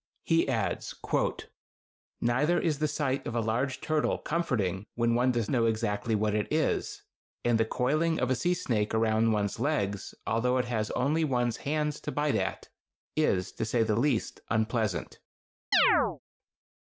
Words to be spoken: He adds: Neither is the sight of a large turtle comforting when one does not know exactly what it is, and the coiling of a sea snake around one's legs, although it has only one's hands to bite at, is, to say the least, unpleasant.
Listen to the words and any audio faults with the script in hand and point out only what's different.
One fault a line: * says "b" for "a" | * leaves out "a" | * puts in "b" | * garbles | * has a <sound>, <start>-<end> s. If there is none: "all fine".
* leaves out "not"
* has a chirp, 15.7-16.2 s